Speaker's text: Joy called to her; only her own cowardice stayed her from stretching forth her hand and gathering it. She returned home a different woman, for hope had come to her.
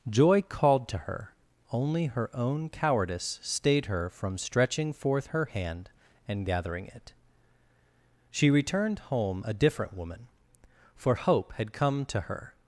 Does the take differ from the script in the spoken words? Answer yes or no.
no